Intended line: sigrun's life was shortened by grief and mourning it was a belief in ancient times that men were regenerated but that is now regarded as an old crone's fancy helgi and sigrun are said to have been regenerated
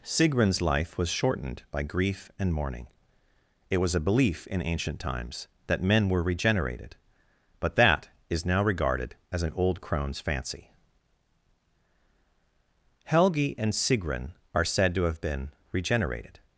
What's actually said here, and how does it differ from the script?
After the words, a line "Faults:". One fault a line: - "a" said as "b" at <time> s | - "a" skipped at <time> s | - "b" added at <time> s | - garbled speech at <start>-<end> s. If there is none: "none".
sigrun's life was shortened by grief and mourning it was a belief in ancient times that men were regenerated but that is now regarded as an old crone's fancy helgi and sigrun are said to have been regenerated
Faults:
none